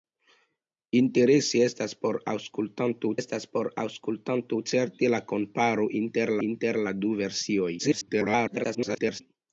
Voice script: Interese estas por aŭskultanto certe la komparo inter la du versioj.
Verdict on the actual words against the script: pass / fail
fail